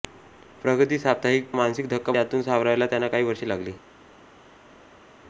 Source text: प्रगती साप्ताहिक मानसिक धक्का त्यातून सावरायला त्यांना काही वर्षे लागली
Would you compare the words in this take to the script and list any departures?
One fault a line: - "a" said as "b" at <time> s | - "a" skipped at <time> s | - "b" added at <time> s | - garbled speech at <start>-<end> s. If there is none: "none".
none